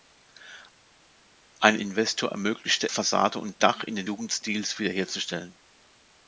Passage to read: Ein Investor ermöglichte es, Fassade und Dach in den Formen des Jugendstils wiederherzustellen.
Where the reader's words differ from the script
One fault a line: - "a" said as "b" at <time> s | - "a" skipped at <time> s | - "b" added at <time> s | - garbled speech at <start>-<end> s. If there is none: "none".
- "es" skipped at 2.9 s
- "Formen des" skipped at 4.1 s